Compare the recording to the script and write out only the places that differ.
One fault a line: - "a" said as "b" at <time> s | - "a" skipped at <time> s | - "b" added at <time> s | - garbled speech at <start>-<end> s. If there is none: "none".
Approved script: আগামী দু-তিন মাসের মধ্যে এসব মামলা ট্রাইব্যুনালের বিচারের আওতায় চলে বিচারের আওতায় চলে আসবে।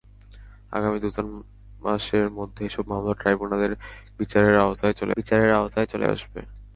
none